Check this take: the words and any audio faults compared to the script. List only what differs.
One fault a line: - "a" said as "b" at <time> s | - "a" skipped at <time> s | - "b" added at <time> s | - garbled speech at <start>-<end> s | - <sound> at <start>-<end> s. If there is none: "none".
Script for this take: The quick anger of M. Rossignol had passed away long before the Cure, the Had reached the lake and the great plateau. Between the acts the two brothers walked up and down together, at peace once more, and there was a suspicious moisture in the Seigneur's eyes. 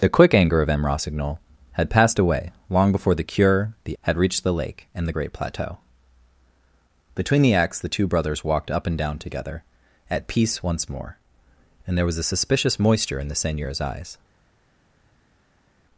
none